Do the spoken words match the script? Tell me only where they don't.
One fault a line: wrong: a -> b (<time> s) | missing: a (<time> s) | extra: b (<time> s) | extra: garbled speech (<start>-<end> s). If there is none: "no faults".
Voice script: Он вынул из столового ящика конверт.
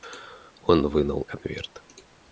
missing: из столового ящика (1.3 s)